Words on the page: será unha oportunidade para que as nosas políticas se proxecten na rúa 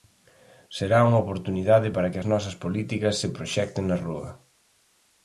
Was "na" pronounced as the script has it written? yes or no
yes